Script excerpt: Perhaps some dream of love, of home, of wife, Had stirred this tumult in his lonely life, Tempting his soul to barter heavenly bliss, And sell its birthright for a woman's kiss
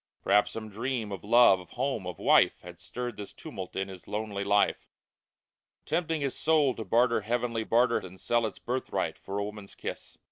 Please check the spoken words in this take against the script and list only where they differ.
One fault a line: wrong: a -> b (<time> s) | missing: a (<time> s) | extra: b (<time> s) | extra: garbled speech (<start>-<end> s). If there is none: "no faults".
wrong: bliss -> barter (7.6 s)